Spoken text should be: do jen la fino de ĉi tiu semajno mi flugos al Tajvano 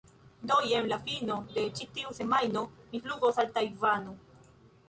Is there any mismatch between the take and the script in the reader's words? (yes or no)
no